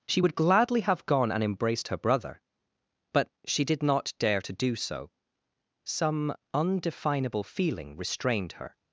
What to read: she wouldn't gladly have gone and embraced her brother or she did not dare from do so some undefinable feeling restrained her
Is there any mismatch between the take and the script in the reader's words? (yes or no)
yes